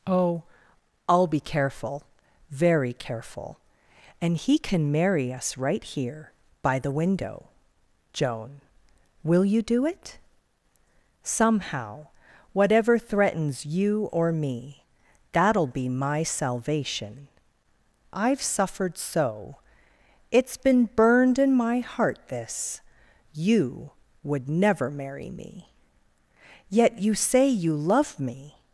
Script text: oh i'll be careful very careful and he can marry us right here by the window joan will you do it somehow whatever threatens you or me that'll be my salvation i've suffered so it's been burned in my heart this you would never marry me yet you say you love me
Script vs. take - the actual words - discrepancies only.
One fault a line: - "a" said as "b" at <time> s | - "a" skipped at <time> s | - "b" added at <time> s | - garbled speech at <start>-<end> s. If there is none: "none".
none